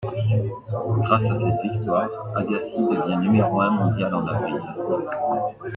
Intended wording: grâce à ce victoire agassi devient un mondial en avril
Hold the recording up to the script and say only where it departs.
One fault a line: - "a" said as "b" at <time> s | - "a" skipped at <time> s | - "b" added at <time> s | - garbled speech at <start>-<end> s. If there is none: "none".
- "ce" said as "cette" at 1.4 s
- "numéro" added at 3.2 s